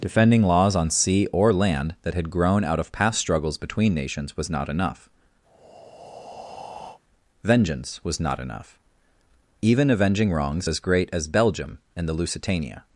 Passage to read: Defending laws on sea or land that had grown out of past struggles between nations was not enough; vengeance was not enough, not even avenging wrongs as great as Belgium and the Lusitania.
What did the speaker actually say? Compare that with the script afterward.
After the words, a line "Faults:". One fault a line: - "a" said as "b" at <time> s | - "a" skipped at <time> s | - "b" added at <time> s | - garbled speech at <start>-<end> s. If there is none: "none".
Defending laws on sea or land that had grown out of past struggles between nations was not enough; vengeance was not enough, even avenging wrongs as great as Belgium and the Lusitania.
Faults:
- "not" skipped at 8.8 s